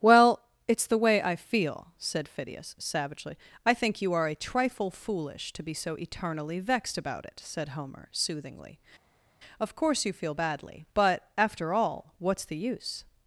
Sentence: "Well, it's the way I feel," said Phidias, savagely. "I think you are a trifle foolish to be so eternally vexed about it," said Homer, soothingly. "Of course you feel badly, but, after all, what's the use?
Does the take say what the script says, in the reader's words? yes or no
yes